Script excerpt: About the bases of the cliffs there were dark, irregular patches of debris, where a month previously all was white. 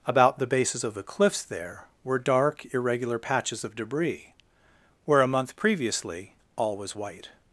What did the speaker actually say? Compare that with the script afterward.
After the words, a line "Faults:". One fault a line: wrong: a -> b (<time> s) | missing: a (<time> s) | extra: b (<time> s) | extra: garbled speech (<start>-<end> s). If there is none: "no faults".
About the bases of the cliffs there were dark, irregular patches of debris, where a month previously all was white.
Faults:
no faults